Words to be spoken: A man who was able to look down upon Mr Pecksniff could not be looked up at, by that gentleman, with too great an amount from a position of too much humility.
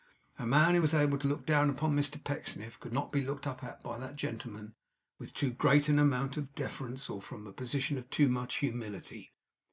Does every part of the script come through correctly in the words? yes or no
no